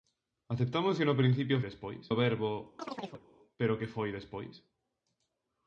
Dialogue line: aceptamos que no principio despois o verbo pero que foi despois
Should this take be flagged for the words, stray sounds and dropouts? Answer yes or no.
yes